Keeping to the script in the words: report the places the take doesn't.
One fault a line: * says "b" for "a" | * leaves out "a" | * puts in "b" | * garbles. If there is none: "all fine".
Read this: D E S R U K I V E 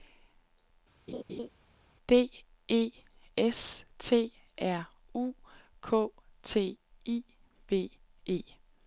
* puts in "T"
* puts in "T"